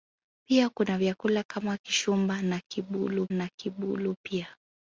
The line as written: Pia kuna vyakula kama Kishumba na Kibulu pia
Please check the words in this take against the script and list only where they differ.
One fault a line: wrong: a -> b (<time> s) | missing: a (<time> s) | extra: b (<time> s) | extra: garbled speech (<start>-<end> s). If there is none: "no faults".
extra: na Kibulu (3.3 s)